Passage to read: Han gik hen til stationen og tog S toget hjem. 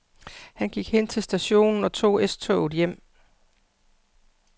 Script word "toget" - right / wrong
right